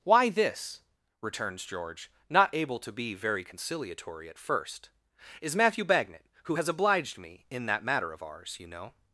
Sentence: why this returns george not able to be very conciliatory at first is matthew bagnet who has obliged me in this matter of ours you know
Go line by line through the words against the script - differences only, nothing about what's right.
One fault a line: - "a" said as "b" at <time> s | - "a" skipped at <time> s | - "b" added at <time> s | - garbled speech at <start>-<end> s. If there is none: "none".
- "this" said as "that" at 7.7 s